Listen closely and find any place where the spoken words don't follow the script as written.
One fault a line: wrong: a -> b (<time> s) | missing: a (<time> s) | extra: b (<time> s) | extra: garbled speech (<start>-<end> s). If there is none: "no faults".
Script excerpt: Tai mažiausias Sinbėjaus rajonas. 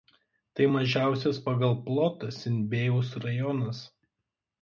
extra: pagal plotą (1.5 s)